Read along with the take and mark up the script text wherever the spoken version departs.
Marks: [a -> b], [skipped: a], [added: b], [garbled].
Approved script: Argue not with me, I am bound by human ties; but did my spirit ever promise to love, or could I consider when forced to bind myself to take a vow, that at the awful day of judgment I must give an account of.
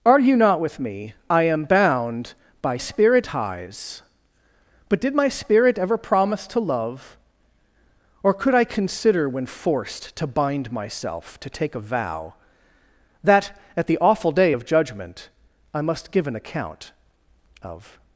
Argue not with me, I am bound by [human -> spirit] ties; but did my spirit ever promise to love, or could I consider when forced to bind myself to take a vow, that at the awful day of judgment I must give an account of.